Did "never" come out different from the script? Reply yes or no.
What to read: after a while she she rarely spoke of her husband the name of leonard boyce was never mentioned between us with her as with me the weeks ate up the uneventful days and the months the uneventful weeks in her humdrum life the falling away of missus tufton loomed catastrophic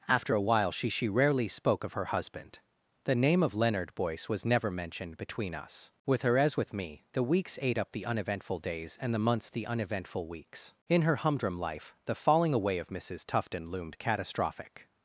no